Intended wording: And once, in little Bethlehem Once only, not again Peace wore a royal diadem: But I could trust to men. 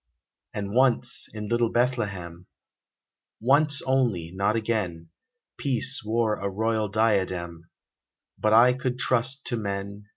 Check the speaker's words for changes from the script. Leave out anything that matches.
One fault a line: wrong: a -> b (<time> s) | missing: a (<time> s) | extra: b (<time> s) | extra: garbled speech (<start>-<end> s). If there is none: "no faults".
no faults